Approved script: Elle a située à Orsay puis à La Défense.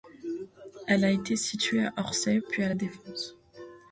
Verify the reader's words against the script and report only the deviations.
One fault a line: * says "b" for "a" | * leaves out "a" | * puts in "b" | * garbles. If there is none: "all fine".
* puts in "été"